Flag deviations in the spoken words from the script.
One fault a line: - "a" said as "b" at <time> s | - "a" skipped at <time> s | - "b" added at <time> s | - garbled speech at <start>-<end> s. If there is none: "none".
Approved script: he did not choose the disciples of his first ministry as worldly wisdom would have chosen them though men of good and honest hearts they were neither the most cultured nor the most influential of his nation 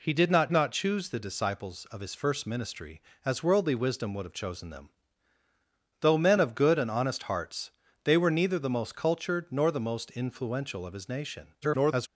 - "not" added at 0.5 s
- garbled speech at 11.6-12.1 s